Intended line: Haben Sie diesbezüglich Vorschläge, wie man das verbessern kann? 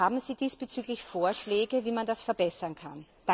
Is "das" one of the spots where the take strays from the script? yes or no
no